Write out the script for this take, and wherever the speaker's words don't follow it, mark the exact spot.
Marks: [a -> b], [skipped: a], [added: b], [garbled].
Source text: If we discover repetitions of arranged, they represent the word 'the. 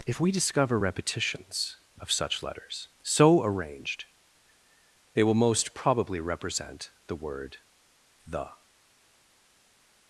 If we discover repetitions of [added: such letters so] arranged, they [added: will most probably] represent the word 'the.